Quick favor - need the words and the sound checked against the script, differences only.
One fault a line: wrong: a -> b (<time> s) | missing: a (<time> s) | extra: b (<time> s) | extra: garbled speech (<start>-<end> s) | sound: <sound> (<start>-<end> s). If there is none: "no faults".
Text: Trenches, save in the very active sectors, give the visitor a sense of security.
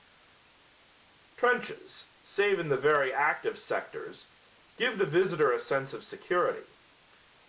no faults